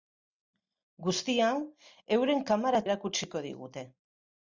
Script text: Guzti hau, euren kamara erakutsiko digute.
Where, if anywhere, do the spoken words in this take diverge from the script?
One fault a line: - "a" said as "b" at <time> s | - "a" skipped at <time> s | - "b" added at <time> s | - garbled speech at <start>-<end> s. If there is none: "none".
none